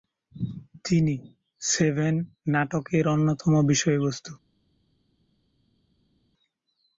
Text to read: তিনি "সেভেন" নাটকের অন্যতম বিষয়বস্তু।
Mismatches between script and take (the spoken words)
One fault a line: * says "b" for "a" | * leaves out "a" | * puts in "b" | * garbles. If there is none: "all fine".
all fine